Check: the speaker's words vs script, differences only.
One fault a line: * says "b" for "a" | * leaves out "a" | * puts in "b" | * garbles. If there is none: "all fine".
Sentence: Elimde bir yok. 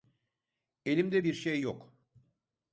* puts in "şey"